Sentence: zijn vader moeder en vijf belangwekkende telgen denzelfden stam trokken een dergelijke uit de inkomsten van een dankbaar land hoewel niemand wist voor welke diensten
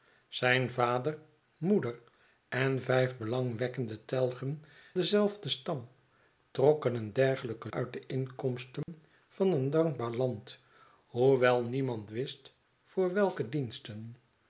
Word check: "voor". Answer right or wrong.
right